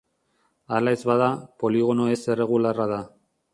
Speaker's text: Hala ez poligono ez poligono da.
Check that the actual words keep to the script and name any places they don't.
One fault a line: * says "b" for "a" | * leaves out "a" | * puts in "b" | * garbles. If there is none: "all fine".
* puts in "bada"
* says "erregularra" for "poligono"